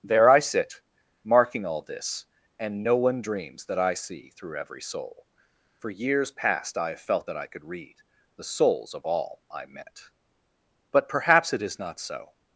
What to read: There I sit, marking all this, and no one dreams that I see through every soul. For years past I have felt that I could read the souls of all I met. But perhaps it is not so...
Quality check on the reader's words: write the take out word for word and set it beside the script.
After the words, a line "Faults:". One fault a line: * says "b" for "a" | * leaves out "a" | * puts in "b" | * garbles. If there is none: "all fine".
There I sit, marking all this, and no one dreams that I see through every soul. For years past I have felt that I could read the souls of all I met. But perhaps it is not so...
Faults:
all fine